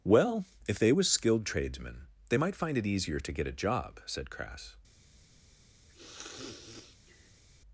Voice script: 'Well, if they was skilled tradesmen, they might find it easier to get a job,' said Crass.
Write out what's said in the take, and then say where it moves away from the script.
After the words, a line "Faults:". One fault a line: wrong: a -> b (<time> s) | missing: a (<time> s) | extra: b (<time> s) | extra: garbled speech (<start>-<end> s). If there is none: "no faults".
'Well, if they was skilled tradesmen, they might find it easier to get a job,' said Crass.
Faults:
no faults